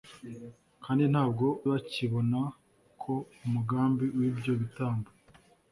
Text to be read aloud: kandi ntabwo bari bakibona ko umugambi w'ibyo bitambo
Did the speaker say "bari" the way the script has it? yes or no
no